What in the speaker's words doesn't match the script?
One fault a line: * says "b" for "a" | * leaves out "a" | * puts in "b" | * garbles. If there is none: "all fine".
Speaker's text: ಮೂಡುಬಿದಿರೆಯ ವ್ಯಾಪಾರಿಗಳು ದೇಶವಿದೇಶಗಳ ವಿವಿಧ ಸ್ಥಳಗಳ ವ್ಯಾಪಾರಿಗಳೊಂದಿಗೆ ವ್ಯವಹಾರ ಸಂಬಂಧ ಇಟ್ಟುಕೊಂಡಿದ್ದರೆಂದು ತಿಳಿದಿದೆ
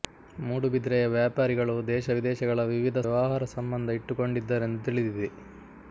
* leaves out "ಸ್ಥಳಗಳ ವ್ಯಾಪಾರಿಗಳೊಂದಿಗೆ"